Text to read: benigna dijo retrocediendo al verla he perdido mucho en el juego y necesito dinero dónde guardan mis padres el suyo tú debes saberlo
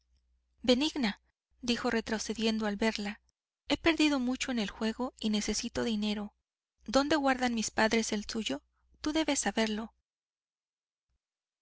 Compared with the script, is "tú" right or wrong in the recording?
right